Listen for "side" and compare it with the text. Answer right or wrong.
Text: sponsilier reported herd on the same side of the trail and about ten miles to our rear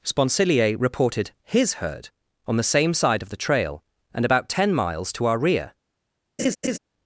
right